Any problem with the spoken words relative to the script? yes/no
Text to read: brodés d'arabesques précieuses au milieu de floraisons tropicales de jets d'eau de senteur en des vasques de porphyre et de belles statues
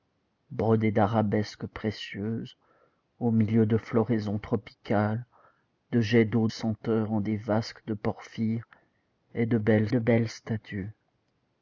yes